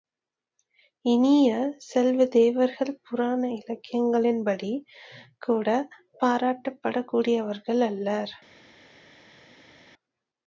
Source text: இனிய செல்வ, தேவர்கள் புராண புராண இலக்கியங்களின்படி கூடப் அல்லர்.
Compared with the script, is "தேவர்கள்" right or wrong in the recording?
right